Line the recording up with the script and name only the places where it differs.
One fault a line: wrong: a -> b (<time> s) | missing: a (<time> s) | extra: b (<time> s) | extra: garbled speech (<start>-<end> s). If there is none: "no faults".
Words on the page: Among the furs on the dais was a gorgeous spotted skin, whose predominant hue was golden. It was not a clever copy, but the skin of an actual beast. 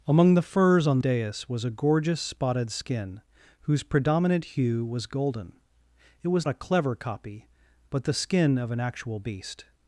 missing: the (1.0 s)
missing: not (6.5 s)